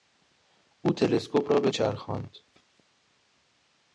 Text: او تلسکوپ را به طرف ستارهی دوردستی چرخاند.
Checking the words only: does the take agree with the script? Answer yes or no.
no